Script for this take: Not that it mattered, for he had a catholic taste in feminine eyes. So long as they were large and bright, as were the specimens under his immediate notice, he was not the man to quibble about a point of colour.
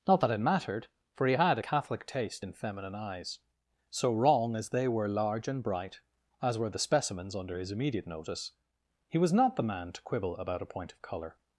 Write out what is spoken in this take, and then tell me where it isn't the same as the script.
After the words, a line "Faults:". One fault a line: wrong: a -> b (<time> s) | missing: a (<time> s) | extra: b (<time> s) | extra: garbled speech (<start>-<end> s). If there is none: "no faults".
Not that it mattered, for he had a catholic taste in feminine eyes. So wrong as they were large and bright, as were the specimens under his immediate notice, he was not the man to quibble about a point of colour.
Faults:
wrong: long -> wrong (4.1 s)